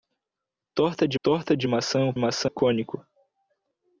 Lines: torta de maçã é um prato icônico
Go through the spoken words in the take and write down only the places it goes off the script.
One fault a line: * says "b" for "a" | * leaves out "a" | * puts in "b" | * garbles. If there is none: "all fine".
* puts in "torta de"
* says "maçã" for "prato"